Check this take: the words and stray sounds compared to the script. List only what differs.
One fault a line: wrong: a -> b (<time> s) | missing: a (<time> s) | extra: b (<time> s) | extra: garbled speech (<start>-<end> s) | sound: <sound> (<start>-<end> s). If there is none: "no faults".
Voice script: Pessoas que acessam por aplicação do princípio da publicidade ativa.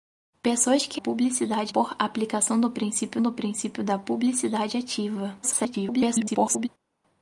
wrong: acessam -> publicidade (0.9 s)
extra: do princípio (3.2 s)
extra: garbled speech (5.4-6.7 s)